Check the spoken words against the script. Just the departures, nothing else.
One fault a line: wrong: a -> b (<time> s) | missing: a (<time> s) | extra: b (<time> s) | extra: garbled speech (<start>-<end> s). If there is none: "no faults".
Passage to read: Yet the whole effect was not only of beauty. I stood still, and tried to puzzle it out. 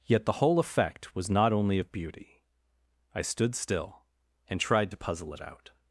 no faults